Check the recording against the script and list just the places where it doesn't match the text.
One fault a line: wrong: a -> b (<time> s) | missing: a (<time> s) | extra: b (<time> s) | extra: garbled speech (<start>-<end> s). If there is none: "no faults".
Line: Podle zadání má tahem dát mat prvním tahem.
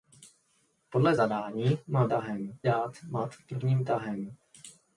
no faults